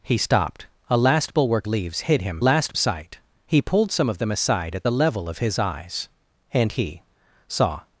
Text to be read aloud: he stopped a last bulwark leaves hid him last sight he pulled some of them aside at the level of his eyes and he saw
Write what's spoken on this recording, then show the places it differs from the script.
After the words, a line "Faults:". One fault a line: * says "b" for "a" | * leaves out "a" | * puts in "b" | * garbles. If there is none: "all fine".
he stopped a last bulwark leaves hid him last sight he pulled some of them aside at the level of his eyes and he saw
Faults:
all fine